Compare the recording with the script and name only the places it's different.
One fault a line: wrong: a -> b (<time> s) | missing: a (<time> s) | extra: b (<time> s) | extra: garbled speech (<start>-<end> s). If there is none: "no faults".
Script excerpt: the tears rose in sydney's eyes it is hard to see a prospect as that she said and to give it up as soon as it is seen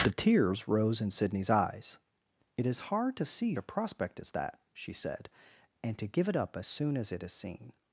no faults